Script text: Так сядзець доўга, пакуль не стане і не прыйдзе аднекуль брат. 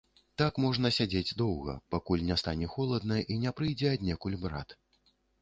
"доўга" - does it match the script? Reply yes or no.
yes